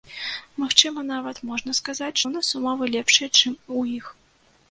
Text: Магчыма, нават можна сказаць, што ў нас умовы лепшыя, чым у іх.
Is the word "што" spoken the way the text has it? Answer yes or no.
no